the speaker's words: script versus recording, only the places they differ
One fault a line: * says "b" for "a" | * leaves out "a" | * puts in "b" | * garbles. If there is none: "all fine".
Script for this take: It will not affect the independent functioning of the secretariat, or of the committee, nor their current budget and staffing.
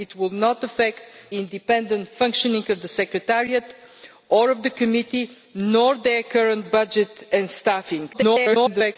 * leaves out "the"
* garbles